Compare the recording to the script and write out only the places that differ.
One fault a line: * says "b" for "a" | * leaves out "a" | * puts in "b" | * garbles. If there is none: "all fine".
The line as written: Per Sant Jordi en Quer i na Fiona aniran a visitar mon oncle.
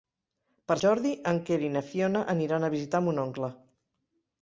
* leaves out "Sant"